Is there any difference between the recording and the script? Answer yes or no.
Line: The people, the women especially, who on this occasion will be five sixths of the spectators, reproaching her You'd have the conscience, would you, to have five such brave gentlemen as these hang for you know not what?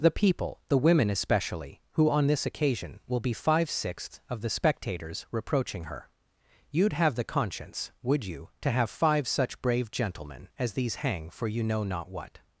no